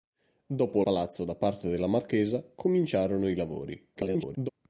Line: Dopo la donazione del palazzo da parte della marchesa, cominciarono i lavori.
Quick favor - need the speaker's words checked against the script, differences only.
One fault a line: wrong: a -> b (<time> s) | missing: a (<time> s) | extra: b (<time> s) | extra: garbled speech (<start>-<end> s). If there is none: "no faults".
missing: la donazione del (0.8 s)
extra: garbled speech (4.0-4.5 s)